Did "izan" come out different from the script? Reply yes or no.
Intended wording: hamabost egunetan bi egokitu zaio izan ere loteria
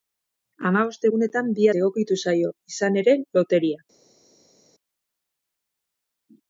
no